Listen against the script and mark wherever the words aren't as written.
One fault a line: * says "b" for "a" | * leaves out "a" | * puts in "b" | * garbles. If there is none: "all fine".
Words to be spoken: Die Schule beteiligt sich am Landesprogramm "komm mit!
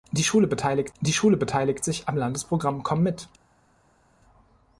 * puts in "die Schule beteiligt"